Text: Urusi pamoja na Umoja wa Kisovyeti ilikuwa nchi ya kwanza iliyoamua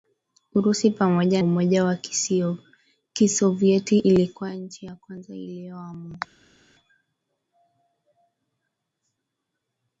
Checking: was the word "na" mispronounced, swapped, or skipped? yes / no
yes